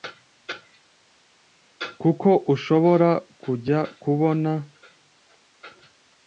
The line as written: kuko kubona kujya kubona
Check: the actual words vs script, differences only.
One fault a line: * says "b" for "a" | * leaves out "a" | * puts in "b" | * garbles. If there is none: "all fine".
* says "ushobora" for "kubona"